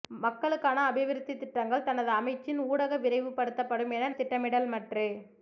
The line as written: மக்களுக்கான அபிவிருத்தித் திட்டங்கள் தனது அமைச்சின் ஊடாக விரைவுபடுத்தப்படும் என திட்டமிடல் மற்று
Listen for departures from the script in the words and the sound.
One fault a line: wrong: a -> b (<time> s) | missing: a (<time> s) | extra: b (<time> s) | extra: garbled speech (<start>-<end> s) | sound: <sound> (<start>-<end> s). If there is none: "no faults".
no faults